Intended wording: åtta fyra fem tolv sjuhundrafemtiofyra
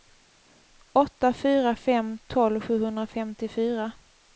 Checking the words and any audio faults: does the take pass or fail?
pass